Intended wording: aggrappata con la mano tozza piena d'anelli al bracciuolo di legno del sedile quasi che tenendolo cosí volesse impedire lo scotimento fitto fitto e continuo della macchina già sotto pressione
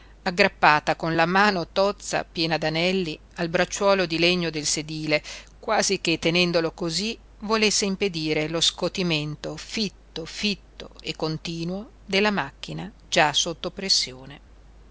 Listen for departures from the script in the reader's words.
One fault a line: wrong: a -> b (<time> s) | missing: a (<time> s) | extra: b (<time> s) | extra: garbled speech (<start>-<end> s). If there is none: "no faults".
no faults